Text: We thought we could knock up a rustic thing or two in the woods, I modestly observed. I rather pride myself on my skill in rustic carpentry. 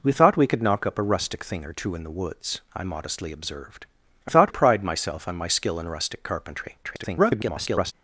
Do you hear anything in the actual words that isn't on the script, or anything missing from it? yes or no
yes